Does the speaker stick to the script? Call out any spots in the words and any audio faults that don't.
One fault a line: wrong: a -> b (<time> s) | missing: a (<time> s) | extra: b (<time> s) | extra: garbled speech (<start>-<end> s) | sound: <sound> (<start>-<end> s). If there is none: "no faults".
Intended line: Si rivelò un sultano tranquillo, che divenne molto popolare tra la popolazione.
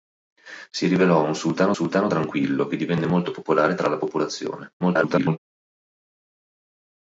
extra: sultano (1.7 s)
extra: garbled speech (4.8-5.4 s)